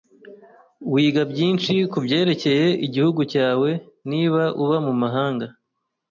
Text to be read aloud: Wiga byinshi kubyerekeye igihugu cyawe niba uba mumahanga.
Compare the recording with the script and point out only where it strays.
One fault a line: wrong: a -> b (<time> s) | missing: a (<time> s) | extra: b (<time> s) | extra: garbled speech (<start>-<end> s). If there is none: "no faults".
no faults